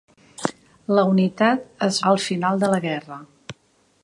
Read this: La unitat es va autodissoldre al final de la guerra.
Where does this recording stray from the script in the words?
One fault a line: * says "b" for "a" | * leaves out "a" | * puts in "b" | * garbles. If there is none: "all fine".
* leaves out "va autodissoldre"